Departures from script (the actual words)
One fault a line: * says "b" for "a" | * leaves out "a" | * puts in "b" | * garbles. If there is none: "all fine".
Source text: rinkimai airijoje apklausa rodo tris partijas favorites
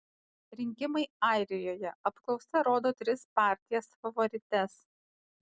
all fine